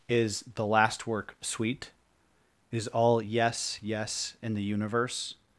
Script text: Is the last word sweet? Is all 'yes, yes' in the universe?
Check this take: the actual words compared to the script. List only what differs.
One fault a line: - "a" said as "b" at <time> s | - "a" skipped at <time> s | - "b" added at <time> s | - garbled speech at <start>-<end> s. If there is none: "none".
- "word" said as "work" at 1.1 s